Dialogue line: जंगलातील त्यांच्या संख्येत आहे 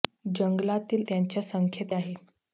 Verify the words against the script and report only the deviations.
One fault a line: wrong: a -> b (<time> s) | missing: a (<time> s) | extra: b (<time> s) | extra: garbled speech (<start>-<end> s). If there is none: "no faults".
no faults